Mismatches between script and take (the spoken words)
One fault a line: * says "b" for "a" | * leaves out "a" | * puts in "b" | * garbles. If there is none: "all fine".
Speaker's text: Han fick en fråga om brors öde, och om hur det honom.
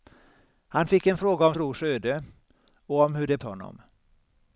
all fine